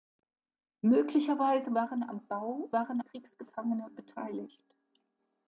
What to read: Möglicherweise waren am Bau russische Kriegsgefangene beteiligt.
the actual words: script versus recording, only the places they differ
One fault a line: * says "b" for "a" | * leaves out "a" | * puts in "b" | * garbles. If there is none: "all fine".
* says "waren" for "russische"